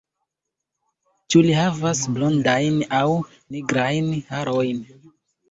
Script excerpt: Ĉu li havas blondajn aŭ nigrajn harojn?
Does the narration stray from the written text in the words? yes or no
no